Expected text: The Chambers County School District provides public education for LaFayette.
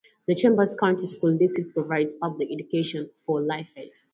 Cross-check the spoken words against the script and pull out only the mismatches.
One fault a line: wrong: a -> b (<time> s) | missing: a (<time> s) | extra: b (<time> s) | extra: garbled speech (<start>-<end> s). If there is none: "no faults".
no faults